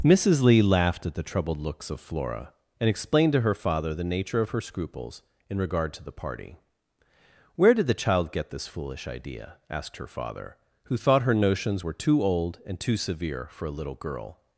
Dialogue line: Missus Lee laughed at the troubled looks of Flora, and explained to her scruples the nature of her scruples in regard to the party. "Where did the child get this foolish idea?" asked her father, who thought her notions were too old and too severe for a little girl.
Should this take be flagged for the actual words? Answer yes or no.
yes